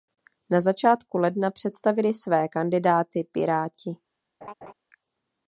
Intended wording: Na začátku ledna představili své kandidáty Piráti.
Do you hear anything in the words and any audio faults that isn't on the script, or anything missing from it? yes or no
yes